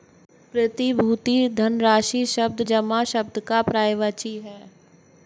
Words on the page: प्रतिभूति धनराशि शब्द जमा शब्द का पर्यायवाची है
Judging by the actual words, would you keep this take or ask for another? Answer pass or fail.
pass